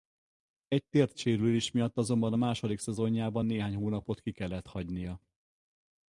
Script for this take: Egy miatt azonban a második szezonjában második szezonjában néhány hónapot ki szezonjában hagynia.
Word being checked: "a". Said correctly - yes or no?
yes